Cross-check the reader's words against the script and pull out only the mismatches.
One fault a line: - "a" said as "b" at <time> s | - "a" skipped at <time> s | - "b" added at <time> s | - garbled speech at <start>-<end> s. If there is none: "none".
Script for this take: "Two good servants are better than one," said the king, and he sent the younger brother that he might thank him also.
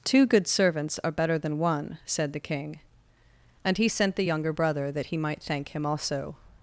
none